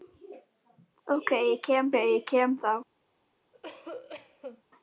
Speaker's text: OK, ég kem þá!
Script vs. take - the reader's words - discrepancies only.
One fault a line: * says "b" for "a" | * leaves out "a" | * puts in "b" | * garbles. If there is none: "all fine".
* puts in "ég kem"